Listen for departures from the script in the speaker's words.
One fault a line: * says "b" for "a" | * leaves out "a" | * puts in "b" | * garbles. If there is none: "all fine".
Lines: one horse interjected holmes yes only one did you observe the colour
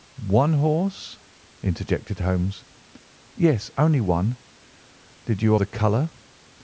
* leaves out "observe"